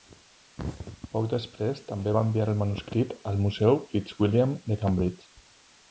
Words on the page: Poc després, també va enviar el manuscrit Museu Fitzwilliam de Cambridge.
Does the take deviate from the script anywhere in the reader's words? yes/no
yes